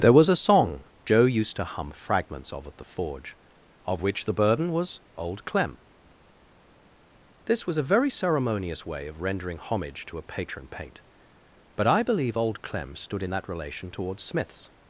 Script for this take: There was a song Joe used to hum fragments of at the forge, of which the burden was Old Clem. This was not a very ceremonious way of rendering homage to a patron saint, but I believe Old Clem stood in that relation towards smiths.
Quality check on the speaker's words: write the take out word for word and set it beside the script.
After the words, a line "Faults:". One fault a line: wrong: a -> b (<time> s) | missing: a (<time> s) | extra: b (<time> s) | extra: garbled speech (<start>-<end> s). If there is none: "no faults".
There was a song Joe used to hum fragments of at the forge, of which the burden was Old Clem. This was a very ceremonious way of rendering homage to a patron paint, but I believe Old Clem stood in that relation towards smiths.
Faults:
missing: not (7.8 s)
wrong: saint -> paint (10.7 s)